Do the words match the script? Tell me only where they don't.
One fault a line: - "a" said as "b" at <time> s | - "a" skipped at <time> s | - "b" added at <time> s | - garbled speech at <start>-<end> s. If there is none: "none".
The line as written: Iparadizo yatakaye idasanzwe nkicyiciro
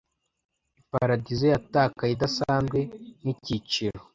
none